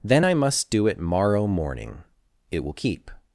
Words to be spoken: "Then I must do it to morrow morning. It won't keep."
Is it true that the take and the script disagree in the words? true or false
true